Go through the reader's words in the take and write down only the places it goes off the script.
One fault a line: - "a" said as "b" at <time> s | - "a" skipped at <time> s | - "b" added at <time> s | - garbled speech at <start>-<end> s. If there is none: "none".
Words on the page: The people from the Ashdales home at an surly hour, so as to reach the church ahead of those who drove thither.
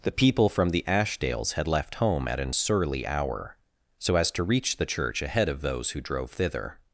- "had left" added at 1.5 s